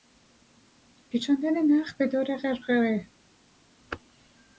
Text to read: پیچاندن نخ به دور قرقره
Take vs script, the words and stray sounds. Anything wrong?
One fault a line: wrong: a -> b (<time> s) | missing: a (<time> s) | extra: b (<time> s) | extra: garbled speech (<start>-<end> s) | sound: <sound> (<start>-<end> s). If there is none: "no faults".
no faults